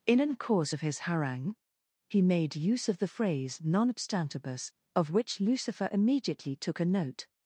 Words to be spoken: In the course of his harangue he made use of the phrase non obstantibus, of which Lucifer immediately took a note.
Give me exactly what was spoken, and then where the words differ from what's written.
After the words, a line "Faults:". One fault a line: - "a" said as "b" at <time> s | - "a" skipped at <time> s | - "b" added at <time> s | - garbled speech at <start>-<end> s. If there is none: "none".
In an course of his harangue he made use of the phrase non obstantibus, of which Lucifer immediately took a note.
Faults:
- "the" said as "an" at 0.2 s